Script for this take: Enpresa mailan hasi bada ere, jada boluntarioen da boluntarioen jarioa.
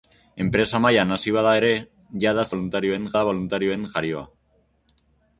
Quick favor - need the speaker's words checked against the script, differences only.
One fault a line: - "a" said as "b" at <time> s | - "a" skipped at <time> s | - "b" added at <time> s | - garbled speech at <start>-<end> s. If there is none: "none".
none